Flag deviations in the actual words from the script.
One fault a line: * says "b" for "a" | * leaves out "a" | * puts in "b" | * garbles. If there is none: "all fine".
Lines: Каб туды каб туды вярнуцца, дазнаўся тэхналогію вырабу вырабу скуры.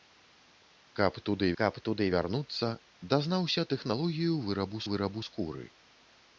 all fine